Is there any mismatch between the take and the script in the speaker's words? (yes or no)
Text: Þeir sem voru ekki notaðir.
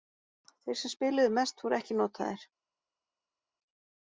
yes